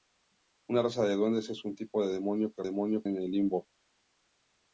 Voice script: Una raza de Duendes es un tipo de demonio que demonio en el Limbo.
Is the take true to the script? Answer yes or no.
yes